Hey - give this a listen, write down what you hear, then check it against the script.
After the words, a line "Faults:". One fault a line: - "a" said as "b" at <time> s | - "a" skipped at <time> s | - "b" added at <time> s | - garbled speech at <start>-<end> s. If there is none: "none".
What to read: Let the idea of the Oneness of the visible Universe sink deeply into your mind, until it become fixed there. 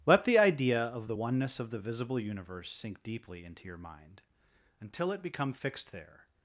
Let the idea of the Oneness of the visible Universe sink deeply into your mind, until it become fixed there.
Faults:
none